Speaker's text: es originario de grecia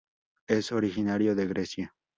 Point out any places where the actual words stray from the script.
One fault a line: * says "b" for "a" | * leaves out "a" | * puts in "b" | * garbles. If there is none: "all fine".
all fine